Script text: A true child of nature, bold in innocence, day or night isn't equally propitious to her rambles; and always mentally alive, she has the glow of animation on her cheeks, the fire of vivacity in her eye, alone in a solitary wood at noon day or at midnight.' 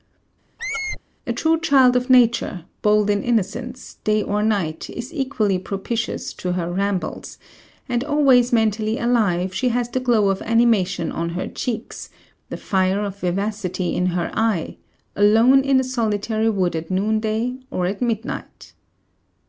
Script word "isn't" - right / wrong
wrong